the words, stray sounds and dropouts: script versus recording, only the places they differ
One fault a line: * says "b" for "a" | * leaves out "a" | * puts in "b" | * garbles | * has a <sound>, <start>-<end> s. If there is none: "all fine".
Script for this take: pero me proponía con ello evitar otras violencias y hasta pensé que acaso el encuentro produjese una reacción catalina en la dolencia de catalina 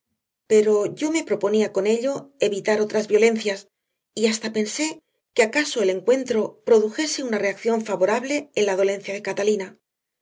* puts in "yo"
* says "favorable" for "catalina"